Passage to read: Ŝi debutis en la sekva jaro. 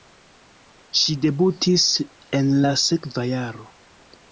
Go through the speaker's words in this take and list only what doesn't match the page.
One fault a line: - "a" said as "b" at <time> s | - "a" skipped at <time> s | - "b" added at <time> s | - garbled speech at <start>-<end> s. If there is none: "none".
none